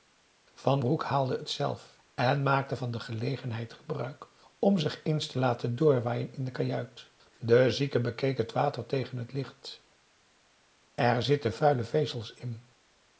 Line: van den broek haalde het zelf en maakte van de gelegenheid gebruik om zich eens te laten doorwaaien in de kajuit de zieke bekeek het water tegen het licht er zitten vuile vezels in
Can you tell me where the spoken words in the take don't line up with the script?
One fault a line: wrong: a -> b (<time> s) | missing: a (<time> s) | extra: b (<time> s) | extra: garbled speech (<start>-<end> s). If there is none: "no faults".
missing: den (0.8 s)